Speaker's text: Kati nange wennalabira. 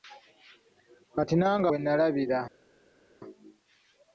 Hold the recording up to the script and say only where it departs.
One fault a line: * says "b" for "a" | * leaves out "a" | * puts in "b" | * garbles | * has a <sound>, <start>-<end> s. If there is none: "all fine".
all fine